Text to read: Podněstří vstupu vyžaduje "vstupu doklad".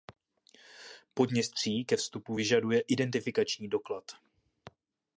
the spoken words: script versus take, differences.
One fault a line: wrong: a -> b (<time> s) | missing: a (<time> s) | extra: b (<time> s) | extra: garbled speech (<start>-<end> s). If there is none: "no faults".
extra: ke (1.9 s)
wrong: vstupu -> identifikační (2.8 s)